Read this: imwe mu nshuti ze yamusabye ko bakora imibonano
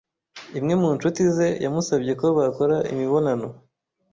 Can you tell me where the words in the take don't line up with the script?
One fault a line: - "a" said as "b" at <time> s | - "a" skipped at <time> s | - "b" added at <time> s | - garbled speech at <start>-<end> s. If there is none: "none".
none